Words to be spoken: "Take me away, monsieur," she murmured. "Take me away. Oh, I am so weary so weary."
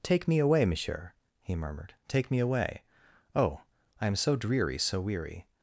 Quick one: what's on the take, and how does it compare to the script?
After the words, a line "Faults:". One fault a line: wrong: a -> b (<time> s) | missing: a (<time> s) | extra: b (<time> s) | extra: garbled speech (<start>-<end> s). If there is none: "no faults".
"Take me away, monsieur," he murmured. "Take me away. Oh, I am so dreary so weary."
Faults:
wrong: she -> he (1.4 s)
wrong: weary -> dreary (4.4 s)